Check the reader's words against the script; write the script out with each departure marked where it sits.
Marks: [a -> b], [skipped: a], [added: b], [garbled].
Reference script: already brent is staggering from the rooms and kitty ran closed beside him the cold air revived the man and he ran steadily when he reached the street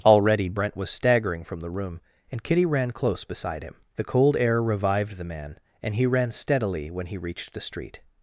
already brent [is -> was] staggering from the [rooms -> room] and kitty ran [closed -> close] beside him the cold air revived the man and he ran steadily when he reached the street